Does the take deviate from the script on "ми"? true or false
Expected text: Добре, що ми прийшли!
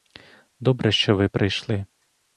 true